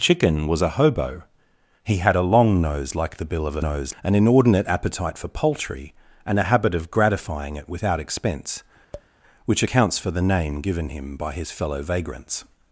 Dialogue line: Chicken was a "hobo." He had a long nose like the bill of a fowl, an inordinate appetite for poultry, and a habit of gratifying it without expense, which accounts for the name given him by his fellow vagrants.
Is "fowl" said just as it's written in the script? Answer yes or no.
no